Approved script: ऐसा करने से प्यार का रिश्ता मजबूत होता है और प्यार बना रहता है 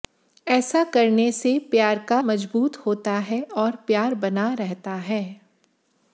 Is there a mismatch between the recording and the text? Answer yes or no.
yes